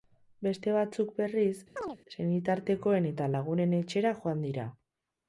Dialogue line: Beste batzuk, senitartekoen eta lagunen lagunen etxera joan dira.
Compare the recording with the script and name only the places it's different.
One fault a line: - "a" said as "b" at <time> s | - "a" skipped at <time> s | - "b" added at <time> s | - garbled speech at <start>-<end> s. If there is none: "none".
- "berriz" added at 1.2 s
- "lagunen" skipped at 3.8 s